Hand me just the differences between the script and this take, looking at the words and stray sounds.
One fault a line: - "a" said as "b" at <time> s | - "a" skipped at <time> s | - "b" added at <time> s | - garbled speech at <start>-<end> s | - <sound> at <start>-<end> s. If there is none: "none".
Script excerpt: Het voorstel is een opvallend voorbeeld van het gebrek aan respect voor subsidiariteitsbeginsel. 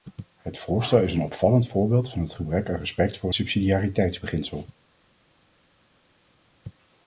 none